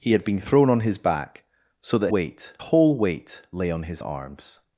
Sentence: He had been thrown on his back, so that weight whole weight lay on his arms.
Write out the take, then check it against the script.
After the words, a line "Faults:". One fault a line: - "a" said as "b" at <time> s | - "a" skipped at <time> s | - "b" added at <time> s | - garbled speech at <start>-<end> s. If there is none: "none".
He had been thrown on his back, so that weight whole weight lay on his arms.
Faults:
none